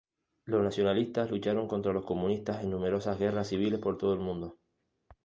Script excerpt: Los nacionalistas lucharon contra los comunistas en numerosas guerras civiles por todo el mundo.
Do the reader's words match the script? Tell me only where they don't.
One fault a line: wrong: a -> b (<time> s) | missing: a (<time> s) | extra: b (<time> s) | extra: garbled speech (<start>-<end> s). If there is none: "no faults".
no faults